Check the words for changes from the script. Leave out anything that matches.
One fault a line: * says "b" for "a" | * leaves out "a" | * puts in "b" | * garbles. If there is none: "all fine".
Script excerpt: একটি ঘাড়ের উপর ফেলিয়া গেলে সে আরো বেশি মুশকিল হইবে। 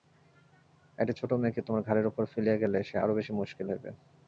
* puts in "ছোটো মেয়েকে তোমার"